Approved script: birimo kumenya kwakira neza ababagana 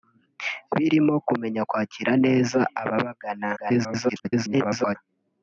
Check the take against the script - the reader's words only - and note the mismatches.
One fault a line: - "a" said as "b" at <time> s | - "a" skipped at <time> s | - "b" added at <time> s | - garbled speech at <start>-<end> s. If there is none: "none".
- garbled speech at 3.6-5.0 s